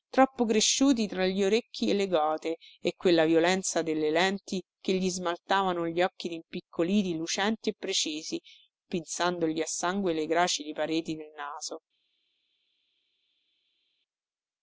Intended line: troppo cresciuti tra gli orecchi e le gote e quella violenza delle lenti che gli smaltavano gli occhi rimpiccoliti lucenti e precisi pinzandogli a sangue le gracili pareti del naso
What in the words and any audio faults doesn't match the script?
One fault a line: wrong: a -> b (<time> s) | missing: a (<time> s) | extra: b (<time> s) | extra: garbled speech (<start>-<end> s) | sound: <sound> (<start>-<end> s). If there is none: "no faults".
no faults